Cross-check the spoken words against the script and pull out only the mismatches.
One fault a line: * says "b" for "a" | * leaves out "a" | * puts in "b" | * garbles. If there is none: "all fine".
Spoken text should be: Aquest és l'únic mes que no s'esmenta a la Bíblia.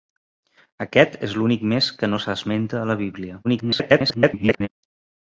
* garbles